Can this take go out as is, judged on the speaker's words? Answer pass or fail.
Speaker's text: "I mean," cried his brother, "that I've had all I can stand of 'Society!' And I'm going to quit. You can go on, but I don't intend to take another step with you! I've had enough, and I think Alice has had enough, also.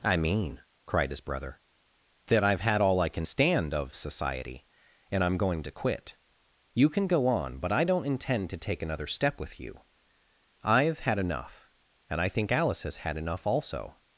pass